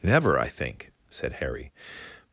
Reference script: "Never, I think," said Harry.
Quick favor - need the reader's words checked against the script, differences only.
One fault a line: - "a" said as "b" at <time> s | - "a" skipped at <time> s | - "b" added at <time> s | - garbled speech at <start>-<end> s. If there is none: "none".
none